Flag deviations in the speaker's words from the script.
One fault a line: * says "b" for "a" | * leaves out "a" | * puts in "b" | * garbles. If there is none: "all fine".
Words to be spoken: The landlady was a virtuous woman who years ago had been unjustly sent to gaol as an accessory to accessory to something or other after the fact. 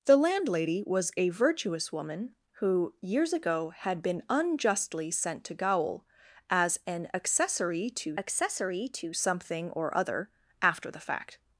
all fine